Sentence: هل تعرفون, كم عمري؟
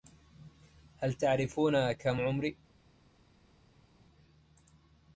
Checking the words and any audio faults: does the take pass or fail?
pass